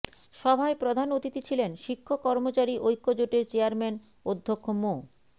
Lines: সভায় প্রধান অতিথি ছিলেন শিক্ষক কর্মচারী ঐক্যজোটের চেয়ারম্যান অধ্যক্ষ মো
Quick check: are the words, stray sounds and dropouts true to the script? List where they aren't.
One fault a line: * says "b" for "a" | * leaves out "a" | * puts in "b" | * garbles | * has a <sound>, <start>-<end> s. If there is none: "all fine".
all fine